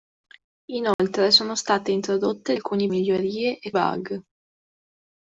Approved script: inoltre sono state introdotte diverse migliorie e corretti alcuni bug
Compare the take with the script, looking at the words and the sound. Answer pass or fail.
fail